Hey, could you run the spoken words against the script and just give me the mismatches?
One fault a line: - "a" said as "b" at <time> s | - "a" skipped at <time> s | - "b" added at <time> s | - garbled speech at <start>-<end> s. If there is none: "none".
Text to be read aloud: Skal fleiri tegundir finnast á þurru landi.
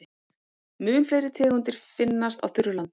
- "Skal" said as "Mun" at 0.9 s